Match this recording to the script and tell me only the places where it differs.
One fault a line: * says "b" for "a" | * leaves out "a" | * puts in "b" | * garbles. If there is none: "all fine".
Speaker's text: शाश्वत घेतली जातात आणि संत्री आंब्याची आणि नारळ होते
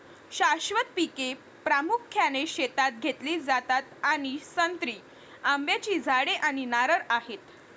* puts in "पिके प्रामुख्याने शेतात"
* puts in "झाडे"
* says "आहेत" for "होते"